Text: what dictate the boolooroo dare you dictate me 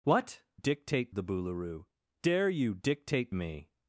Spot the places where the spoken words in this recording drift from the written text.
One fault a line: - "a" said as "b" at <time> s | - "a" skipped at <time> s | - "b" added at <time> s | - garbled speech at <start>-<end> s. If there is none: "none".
none